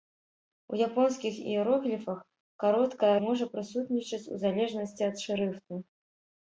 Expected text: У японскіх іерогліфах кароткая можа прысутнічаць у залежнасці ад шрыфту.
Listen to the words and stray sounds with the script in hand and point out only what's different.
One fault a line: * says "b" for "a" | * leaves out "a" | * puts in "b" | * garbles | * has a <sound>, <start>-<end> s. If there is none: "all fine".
all fine